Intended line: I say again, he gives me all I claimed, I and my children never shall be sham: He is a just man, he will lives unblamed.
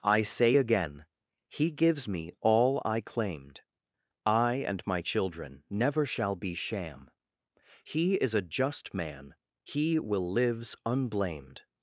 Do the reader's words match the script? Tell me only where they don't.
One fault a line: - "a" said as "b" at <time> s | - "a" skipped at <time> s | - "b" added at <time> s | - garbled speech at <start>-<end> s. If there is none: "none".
none